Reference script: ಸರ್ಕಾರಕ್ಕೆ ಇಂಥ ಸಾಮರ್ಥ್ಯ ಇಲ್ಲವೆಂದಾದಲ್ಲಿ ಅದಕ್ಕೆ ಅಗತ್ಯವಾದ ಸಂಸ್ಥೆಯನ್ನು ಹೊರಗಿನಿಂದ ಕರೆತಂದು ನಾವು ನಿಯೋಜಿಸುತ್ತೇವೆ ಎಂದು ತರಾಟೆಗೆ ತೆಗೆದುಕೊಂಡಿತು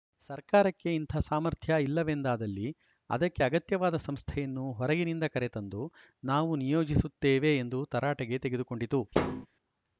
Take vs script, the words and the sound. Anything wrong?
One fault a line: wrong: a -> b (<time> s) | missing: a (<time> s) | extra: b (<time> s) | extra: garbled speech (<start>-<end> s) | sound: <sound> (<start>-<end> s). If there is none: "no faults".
sound: thud (9.1-9.5 s)